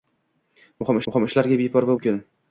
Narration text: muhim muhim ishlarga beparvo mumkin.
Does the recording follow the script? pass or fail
pass